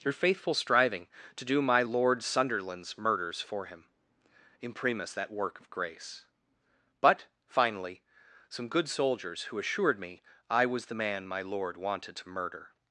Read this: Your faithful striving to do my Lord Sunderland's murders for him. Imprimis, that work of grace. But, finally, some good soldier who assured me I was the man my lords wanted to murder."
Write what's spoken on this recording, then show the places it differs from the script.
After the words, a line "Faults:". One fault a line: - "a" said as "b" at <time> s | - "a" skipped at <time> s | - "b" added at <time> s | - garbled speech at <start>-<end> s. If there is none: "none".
Your faithful striving to do my Lord Sunderland's murders for him. Imprimis, that work of grace. But, finally, some good soldiers who assured me I was the man my lord wanted to murder."
Faults:
- "soldier" said as "soldiers" at 8.9 s
- "lords" said as "lord" at 11.4 s